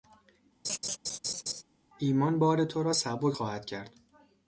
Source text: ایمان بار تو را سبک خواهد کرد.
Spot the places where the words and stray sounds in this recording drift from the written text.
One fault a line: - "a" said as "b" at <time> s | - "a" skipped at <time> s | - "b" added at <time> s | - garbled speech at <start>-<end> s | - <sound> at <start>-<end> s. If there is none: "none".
- laugh at 0.6-1.6 s